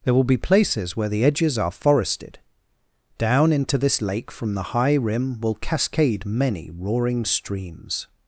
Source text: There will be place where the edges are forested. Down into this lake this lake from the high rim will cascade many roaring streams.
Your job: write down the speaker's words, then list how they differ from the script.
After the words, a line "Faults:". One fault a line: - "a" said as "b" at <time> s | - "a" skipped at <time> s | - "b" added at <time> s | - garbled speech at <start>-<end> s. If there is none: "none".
There will be places where the edges are forested. Down into this lake from the high rim will cascade many roaring streams.
Faults:
- "place" said as "places" at 0.4 s
- "this lake" skipped at 4.3 s